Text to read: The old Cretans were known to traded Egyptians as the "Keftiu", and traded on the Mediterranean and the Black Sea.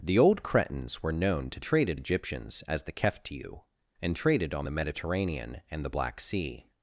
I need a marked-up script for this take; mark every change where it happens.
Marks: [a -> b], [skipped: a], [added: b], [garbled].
The old Cretans were known to traded Egyptians as the "Keftiu", and traded on the Mediterranean and the Black Sea.